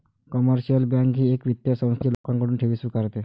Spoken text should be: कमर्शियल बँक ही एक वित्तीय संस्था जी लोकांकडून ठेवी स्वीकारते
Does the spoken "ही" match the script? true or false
true